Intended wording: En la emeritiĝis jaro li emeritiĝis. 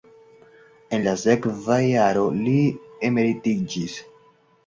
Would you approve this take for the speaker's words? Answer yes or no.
no